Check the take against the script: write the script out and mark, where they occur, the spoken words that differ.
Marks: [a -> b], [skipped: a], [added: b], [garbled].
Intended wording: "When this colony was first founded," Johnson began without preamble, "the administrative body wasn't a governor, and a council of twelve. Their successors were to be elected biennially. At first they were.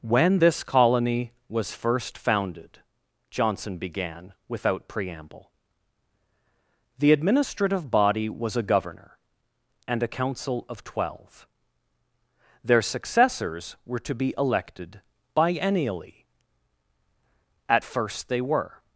"When this colony was first founded," Johnson began without preamble, "the administrative body [wasn't -> was] a governor, and a council of twelve. Their successors were to be elected biennially. At first they were.